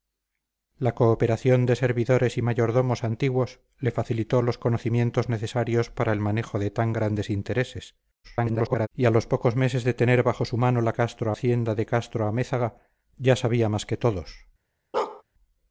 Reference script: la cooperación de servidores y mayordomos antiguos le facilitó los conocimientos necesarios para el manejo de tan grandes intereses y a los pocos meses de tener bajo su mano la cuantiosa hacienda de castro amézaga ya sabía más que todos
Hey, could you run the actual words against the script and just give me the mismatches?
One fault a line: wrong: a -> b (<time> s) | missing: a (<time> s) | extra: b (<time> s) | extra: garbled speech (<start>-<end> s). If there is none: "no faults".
extra: garbled speech (8.2-8.9 s)
wrong: cuantiosa -> castro (10.9 s)